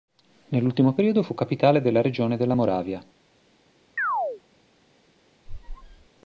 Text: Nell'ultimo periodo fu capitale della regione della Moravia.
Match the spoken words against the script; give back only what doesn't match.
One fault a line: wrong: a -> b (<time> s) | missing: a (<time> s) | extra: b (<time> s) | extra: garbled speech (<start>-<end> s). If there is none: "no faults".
no faults